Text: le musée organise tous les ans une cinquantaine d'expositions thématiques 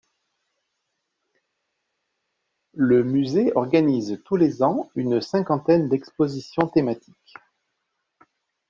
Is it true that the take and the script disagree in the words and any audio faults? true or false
false